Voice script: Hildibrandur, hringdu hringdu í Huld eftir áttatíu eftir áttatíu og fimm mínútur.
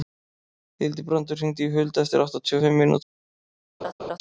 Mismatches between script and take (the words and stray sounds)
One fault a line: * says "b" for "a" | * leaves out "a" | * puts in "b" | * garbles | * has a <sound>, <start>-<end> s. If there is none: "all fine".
* leaves out "hringdu"
* leaves out "eftir áttatíu"
* has a laugh, 3.8-4.2 s